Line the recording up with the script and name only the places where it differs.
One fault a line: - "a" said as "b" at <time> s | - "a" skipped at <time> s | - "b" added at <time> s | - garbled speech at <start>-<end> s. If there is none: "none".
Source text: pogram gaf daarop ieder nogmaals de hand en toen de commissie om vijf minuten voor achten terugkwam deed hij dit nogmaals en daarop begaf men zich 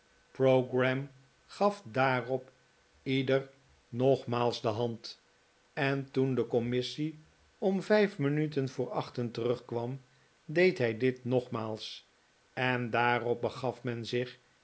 none